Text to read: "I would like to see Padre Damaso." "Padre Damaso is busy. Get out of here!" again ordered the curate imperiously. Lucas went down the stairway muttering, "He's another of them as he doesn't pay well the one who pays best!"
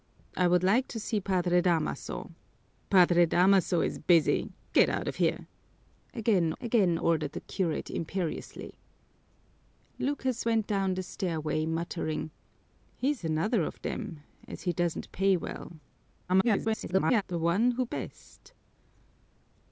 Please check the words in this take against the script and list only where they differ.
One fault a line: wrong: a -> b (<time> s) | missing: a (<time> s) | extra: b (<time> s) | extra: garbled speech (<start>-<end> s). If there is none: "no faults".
extra: again (6.6 s)
extra: garbled speech (16.3-17.2 s)
missing: pays (17.8 s)